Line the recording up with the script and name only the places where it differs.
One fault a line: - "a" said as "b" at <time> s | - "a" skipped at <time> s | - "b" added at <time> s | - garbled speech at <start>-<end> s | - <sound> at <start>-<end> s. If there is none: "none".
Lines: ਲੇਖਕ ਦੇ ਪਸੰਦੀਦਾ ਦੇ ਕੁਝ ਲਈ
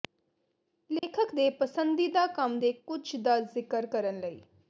- dropout at 1.0-1.0 s
- "ਕੰਮ" added at 2.3 s
- "ਦਾ ਜ਼ਿਕਰ ਕਰਨ" added at 3.1 s